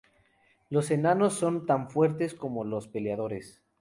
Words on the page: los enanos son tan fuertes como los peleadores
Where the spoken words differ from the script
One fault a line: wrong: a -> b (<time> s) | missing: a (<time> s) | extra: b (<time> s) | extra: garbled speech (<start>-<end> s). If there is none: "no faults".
no faults